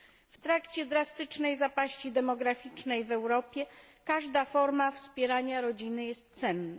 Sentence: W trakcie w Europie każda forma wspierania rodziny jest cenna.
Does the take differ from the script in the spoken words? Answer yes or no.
yes